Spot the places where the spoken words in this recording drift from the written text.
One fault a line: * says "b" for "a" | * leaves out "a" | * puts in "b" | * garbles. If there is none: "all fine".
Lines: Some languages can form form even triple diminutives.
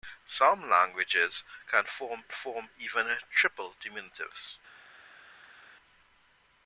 all fine